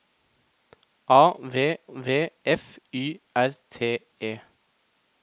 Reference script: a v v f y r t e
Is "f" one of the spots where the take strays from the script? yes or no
no